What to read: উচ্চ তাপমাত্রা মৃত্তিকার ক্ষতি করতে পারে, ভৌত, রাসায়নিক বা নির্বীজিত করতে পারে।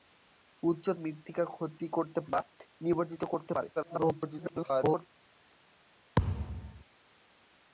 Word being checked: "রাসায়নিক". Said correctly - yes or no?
no